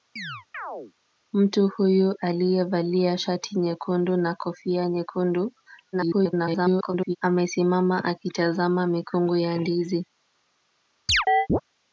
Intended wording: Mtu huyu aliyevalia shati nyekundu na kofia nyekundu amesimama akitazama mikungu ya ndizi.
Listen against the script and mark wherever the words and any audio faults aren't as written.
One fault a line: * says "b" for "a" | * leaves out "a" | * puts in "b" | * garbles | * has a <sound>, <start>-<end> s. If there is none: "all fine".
* has a chirp, 0.2-0.9 s
* garbles
* has a chirp, 11.1-11.6 s